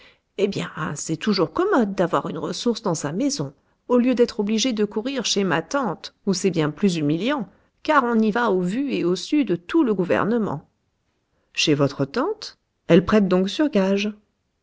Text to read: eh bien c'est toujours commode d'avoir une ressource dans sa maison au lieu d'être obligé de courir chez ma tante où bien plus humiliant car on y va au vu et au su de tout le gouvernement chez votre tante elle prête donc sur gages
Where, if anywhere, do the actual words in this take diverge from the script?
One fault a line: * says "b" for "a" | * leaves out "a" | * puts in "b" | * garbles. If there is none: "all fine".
* puts in "c'est"